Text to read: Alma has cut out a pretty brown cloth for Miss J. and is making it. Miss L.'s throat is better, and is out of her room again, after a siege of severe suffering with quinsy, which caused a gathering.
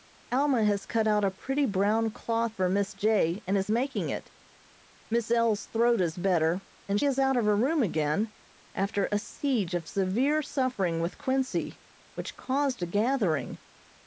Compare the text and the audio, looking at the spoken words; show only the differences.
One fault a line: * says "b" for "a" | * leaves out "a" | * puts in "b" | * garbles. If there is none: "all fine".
all fine